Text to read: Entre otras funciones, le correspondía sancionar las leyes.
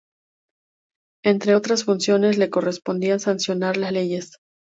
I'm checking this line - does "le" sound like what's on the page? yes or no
yes